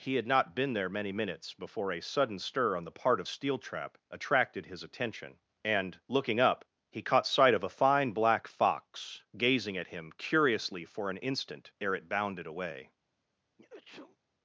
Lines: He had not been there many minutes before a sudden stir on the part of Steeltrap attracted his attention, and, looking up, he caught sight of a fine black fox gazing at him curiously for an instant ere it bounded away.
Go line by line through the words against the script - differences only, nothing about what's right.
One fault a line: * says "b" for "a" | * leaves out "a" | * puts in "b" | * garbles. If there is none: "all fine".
all fine